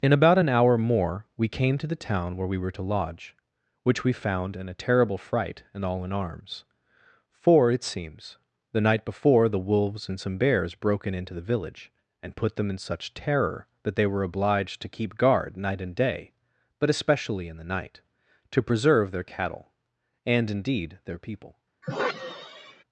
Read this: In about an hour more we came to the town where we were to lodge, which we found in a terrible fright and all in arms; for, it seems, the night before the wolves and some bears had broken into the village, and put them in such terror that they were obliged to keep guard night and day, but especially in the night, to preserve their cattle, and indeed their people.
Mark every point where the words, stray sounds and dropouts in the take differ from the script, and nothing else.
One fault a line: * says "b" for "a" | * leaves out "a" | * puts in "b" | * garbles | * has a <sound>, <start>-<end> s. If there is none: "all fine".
* leaves out "had"
* has a sigh, 21.8-22.8 s